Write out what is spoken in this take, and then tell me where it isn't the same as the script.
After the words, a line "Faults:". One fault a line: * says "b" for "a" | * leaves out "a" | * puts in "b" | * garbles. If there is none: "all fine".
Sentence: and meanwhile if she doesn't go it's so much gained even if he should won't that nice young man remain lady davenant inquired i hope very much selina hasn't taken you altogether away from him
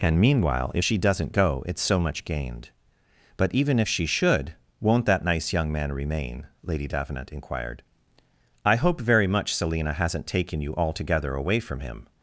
and meanwhile if she doesn't go it's so much gained but even if she should won't that nice young man remain lady davenant inquired i hope very much selina hasn't taken you altogether away from him
Faults:
* puts in "but"
* says "she" for "he"